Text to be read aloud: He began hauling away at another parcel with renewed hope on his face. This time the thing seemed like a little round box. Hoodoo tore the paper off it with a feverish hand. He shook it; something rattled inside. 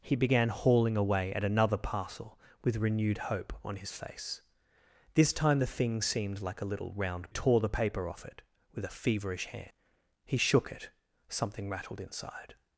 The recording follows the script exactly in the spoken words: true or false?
false